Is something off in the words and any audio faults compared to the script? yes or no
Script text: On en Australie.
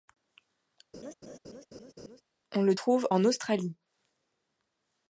yes